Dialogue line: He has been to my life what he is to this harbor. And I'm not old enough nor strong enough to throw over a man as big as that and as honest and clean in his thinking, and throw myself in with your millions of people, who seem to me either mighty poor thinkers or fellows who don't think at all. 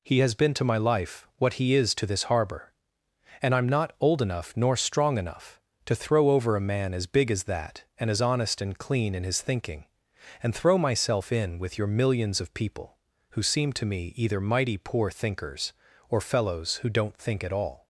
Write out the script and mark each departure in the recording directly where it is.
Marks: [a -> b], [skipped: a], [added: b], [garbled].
He has been to my life what he is to this harbor. And I'm not old enough nor strong enough to throw over a man as big as that and as honest and clean in his thinking, and throw myself in with your millions of people, who seem to me either mighty poor thinkers or fellows who don't think at all.